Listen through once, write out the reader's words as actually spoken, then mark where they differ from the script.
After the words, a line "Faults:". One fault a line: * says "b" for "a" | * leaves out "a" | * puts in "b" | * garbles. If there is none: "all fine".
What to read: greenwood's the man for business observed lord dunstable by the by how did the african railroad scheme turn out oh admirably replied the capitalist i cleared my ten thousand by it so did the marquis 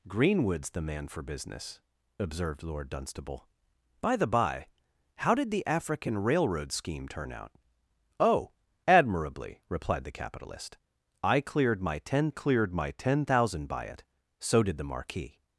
greenwood's the man for business observed lord dunstable by the by how did the african railroad scheme turn out oh admirably replied the capitalist i cleared my ten cleared my ten thousand by it so did the marquis
Faults:
* puts in "cleared my ten"